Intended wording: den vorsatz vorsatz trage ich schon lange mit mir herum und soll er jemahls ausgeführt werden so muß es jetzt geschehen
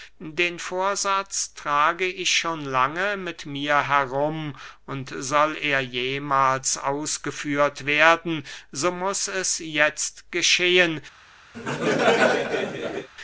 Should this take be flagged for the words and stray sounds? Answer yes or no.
yes